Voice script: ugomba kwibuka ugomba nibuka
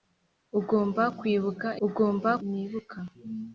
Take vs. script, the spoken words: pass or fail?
pass